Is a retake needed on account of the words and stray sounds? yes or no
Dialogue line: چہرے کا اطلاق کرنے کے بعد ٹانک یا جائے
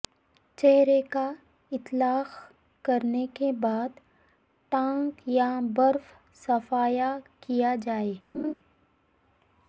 yes